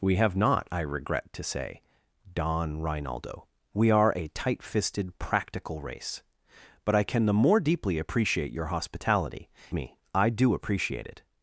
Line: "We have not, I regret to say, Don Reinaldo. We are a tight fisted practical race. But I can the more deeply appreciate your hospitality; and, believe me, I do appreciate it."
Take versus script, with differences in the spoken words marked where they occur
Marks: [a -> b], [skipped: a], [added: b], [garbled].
"We have not, I regret to say, Don Reinaldo. We are a tight fisted practical race. But I can the more deeply appreciate your hospitality; [skipped: and, believe] me, I do appreciate it."